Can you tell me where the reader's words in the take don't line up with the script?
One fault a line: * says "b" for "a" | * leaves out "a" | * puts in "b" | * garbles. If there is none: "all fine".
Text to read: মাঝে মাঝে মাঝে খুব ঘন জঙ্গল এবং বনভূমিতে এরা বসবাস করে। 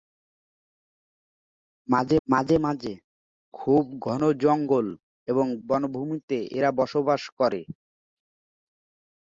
all fine